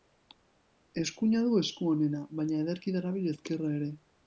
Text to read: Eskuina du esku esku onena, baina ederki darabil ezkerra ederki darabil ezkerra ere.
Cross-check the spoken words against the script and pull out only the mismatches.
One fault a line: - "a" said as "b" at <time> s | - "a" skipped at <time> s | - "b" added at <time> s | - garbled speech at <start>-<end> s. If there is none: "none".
- "esku" skipped at 1.9 s
- "ederki darabil ezkerra" skipped at 3.8 s